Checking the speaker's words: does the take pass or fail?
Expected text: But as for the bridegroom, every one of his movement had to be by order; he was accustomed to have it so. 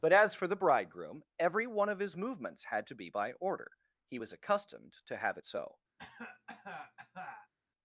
fail